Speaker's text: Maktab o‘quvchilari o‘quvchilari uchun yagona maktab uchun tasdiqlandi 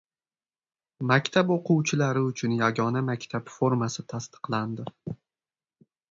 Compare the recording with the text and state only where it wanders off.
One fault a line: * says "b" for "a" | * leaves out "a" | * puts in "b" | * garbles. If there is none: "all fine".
* leaves out "o‘quvchilari"
* says "formasi" for "uchun"